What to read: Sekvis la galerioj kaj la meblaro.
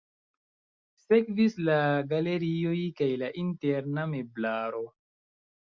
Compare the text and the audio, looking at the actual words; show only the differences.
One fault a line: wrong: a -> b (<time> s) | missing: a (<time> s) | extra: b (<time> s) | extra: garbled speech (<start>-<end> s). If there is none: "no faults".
extra: interna (3.5 s)